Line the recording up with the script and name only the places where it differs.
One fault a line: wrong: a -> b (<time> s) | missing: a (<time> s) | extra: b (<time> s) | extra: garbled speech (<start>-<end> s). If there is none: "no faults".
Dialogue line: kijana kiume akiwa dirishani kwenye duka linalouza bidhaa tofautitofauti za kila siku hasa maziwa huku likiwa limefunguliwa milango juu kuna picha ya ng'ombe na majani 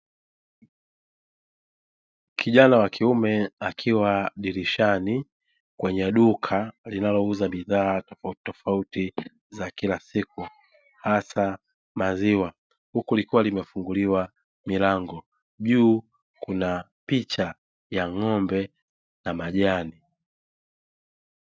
extra: wa (2.8 s)